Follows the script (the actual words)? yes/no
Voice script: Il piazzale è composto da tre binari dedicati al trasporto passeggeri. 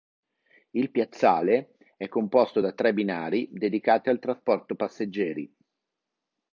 yes